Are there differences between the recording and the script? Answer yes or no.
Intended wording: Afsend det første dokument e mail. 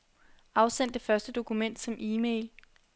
yes